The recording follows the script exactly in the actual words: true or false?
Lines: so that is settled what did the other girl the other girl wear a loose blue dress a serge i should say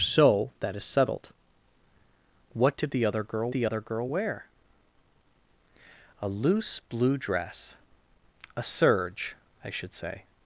true